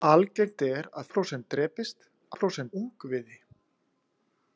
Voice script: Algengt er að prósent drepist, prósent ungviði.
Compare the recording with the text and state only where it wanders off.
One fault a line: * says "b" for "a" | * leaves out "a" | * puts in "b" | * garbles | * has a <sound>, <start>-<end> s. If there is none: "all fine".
all fine